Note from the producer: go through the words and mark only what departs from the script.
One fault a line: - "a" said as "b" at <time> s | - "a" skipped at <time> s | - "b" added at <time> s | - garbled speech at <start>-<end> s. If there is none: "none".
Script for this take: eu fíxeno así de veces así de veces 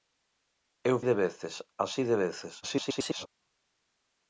- "fíxeno así" skipped at 1.0 s
- garbled speech at 2.6-3.3 s